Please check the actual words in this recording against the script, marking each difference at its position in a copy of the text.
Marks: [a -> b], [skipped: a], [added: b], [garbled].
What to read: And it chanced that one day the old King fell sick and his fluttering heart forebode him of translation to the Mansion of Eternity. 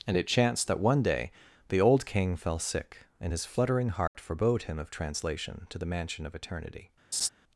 And it chanced that one day the old King fell sick and his fluttering heart forebode him of translation to the Mansion of Eternity.